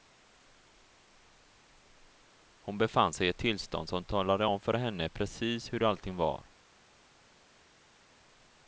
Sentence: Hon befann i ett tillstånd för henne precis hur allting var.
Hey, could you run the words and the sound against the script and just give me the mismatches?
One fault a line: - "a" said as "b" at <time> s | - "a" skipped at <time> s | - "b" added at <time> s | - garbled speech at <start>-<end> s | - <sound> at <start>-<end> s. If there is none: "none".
- "sig" added at 3.1 s
- "som talade om" added at 3.9 s